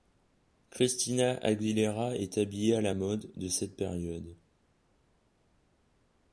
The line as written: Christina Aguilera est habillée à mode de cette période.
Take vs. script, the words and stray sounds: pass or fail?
fail